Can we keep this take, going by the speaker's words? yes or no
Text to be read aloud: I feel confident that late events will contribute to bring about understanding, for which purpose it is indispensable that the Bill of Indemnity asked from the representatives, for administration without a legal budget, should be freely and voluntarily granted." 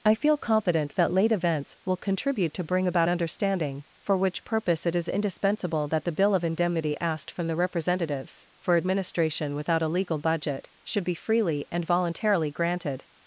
yes